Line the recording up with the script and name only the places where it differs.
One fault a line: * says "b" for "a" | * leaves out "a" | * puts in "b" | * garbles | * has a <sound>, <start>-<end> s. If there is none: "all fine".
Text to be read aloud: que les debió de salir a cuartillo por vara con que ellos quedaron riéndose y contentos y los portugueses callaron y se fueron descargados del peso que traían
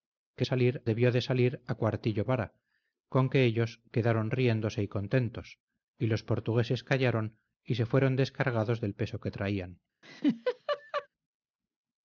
* says "salir" for "les"
* leaves out "por"
* has a laugh, 10.0-11.1 s